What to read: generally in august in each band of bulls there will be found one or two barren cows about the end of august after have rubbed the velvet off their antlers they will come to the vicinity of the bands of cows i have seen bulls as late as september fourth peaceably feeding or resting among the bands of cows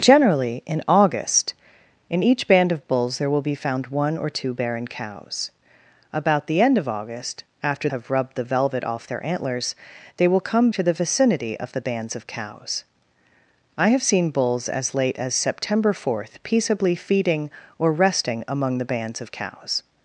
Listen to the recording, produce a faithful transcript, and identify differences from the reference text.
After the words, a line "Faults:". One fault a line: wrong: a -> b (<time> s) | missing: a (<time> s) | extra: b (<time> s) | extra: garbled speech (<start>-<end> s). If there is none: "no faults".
generally in august in each band of bulls there will be found one or two barren cows about the end of august after have rubbed the velvet off their antlers they will come to the vicinity of the bands of cows i have seen bulls as late as september fourth peaceably feeding or resting among the bands of cows
Faults:
no faults